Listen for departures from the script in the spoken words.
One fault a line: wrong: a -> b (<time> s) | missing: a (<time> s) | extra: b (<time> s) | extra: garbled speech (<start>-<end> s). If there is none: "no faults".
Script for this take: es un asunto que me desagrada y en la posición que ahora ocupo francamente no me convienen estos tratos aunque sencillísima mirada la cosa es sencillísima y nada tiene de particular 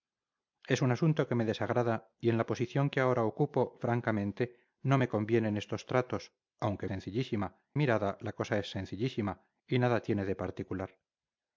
no faults